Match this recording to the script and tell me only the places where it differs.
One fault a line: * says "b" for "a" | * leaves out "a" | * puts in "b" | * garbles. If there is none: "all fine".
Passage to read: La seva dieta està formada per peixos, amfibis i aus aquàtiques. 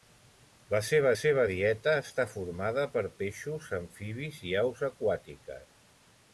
* puts in "seva"